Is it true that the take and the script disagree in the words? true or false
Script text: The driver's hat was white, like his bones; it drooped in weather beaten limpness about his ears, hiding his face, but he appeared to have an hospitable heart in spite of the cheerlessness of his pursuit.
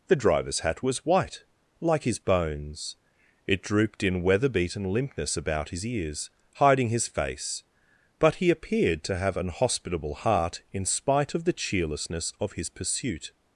false